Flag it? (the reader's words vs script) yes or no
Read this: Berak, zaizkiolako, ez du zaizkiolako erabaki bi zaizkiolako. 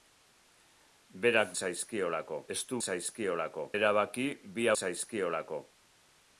no